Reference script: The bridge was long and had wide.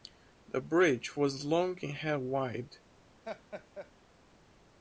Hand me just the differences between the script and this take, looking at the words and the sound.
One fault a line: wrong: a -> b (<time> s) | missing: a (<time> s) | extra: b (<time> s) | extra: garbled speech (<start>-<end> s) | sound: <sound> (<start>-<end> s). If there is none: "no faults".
sound: laugh (3.2-3.9 s)